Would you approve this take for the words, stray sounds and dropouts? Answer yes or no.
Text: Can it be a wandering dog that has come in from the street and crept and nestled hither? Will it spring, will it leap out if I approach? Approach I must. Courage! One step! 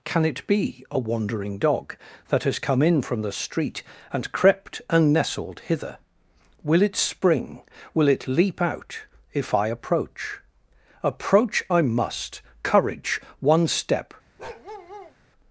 no